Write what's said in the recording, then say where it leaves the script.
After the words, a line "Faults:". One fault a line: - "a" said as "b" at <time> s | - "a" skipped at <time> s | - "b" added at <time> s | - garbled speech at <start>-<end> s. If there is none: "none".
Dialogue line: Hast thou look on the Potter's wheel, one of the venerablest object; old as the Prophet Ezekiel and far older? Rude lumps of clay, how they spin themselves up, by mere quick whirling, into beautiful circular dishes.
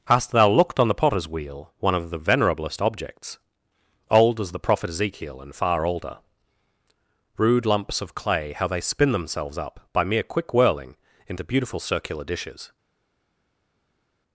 Hast thou looked on the Potter's wheel, one of the venerablest objects; old as the Prophet Ezekiel and far older? Rude lumps of clay, how they spin themselves up, by mere quick whirling, into beautiful circular dishes.
Faults:
- "look" said as "looked" at 0.5 s
- "object" said as "objects" at 2.8 s